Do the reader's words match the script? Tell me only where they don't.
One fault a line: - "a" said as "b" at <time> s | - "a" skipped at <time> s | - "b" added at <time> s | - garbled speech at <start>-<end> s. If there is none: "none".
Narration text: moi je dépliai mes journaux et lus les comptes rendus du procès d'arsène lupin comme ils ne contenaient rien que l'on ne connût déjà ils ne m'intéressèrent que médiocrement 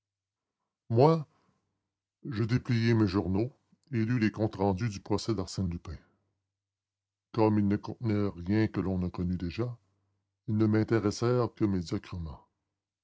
none